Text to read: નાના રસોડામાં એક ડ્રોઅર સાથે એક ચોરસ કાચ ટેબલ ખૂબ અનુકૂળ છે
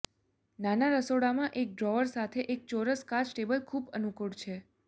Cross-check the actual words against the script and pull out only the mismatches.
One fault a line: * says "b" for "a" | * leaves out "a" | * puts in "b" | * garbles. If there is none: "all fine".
all fine